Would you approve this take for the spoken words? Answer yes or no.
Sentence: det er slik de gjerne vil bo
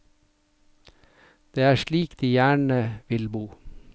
yes